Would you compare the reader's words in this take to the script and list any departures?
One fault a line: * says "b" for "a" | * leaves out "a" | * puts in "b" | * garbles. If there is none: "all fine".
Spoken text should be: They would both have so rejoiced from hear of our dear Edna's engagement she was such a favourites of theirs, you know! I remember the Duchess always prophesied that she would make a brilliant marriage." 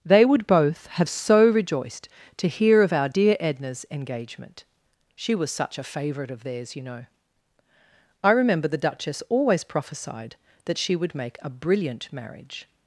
* says "to" for "from"
* says "favourite" for "favourites"